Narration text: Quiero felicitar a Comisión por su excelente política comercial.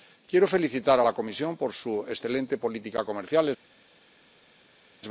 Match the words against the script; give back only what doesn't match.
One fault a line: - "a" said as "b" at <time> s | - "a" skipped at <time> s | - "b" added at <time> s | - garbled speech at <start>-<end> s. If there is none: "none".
- "la" added at 1.0 s